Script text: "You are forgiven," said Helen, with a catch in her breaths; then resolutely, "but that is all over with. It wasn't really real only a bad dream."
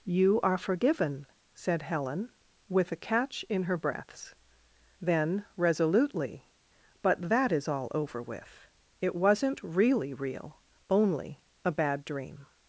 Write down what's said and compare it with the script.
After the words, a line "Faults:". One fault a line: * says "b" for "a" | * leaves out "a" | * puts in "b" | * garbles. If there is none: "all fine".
"You are forgiven," said Helen, with a catch in her breaths; then resolutely, "but that is all over with. It wasn't really real only a bad dream."
Faults:
all fine